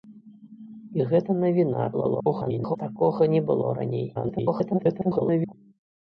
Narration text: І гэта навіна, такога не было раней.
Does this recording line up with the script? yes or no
no